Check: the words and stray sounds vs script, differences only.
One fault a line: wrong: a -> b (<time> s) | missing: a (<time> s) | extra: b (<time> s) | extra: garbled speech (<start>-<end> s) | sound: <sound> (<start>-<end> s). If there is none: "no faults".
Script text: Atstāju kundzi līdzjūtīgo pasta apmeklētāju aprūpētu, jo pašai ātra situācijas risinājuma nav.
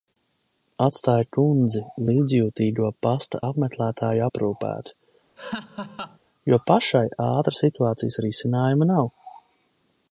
sound: laugh (5.4-6.2 s)